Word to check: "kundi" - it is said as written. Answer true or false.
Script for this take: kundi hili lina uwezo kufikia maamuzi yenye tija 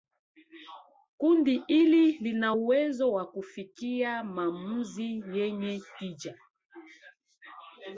true